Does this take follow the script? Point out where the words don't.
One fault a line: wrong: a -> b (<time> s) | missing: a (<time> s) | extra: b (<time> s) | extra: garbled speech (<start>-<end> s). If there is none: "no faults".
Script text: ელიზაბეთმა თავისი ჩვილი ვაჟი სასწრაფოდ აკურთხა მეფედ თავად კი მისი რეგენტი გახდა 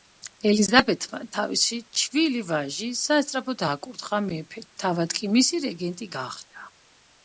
no faults